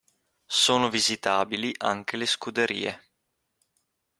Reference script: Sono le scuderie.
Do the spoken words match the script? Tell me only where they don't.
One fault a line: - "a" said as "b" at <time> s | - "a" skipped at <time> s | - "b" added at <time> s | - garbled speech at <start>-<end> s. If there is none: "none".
- "visitabili anche" added at 0.9 s